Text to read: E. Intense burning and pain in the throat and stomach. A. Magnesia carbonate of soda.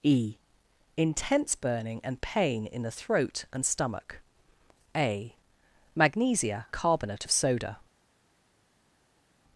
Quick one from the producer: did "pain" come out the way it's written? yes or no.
yes